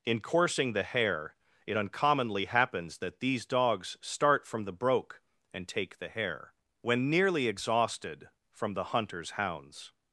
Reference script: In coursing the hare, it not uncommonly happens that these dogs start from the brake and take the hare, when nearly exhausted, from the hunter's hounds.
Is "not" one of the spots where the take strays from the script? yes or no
yes